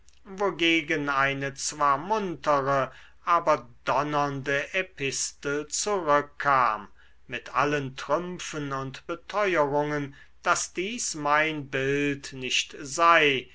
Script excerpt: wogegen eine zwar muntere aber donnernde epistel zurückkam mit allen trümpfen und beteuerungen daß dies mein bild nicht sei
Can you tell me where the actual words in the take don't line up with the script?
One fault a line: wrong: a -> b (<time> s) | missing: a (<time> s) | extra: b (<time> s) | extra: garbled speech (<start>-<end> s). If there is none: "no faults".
no faults